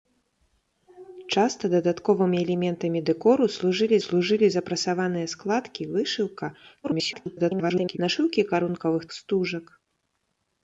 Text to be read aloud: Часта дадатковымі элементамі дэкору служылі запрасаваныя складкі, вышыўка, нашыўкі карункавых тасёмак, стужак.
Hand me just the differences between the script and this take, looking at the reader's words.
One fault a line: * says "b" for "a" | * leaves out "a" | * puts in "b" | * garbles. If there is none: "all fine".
* puts in "служылі"
* garbles
* leaves out "тасёмак"